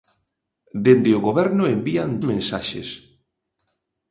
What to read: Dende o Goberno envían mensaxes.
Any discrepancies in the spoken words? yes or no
no